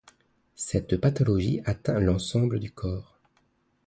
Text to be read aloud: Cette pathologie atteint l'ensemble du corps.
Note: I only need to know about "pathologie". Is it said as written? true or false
true